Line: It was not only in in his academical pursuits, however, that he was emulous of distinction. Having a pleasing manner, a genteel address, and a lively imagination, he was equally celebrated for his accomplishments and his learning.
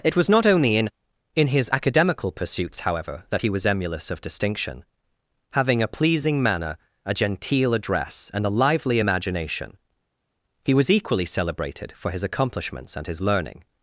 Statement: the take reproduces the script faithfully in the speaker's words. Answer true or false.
true